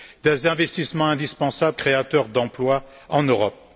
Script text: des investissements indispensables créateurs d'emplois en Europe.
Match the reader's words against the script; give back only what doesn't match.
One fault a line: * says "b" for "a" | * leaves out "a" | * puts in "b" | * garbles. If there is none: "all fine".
all fine